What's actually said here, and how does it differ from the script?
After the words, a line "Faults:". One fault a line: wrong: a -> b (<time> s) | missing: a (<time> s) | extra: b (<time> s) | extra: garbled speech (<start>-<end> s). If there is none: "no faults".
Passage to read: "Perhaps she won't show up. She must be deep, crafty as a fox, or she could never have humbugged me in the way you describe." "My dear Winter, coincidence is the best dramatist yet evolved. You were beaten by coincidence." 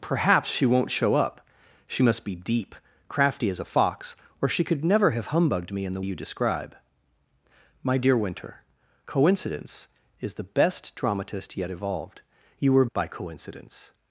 "Perhaps she won't show up. She must be deep, crafty as a fox, or she could never have humbugged me in the you describe." "My dear Winter, coincidence is the best dramatist yet evolved. You were by coincidence."
Faults:
missing: way (6.0 s)
missing: beaten (12.9 s)